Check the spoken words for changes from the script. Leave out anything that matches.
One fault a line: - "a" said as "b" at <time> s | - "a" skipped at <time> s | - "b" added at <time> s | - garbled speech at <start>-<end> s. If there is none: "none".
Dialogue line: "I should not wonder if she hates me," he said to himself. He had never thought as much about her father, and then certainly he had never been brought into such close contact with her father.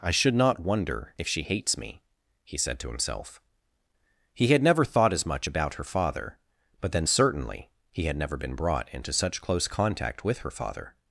- "and" said as "but" at 6.8 s